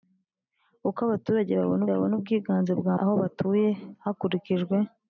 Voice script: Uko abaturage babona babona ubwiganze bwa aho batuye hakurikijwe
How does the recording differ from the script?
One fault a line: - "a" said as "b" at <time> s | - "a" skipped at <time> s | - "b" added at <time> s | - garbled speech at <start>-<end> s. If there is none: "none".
none